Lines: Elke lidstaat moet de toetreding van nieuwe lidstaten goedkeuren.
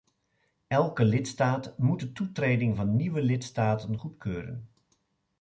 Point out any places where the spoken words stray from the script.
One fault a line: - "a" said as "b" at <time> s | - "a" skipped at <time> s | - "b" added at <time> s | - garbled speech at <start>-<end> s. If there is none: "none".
none